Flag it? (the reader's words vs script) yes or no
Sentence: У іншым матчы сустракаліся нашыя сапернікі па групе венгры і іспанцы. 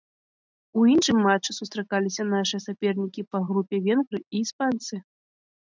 no